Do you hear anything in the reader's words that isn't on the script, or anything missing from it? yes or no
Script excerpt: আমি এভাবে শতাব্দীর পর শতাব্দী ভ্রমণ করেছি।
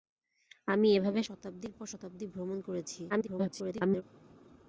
yes